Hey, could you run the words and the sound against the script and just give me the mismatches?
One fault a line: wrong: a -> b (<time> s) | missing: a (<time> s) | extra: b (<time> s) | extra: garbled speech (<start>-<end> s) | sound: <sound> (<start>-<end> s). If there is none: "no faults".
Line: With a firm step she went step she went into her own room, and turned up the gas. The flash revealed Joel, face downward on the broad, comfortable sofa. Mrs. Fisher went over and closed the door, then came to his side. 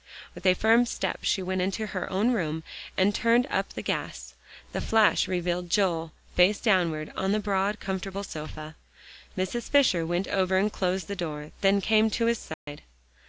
missing: step she went (1.6 s)
sound: dropout (12.5-12.7 s)